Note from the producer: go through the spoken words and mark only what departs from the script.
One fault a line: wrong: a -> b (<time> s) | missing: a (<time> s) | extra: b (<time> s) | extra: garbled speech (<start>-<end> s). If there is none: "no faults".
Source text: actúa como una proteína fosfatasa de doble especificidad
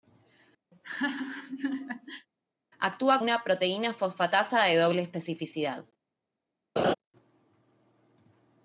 missing: como (3.2 s)